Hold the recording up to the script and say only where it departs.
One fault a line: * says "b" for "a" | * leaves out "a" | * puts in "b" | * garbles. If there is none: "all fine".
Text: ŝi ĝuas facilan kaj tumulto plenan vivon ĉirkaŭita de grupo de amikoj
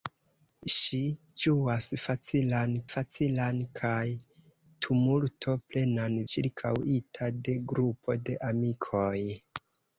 * puts in "facilan"
* leaves out "vivon"